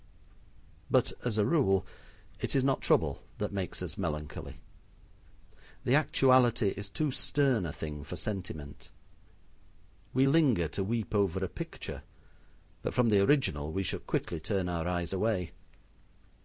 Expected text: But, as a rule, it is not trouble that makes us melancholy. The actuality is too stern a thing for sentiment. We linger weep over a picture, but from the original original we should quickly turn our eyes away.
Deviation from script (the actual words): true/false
true